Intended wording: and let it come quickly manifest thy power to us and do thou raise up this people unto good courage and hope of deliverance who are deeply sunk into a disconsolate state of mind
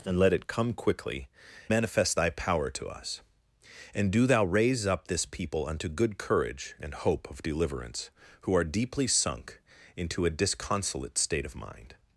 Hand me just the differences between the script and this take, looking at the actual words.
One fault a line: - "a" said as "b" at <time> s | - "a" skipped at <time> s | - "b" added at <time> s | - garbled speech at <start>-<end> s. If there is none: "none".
none